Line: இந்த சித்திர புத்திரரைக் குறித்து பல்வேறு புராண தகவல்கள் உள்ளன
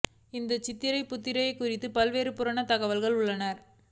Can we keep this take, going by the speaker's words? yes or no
yes